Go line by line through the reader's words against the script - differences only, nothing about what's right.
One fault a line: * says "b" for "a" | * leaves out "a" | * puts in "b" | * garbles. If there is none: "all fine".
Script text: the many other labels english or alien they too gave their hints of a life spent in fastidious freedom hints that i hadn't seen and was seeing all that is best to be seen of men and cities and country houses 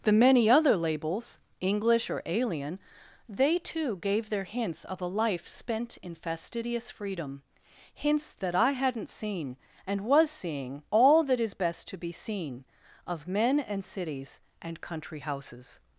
all fine